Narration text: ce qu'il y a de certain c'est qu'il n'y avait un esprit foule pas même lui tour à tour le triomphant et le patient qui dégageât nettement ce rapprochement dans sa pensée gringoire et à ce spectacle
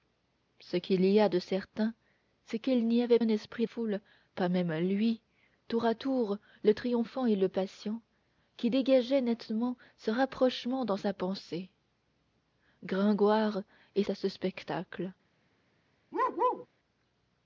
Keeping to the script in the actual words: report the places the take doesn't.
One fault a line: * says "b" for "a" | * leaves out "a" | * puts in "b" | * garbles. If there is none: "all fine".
all fine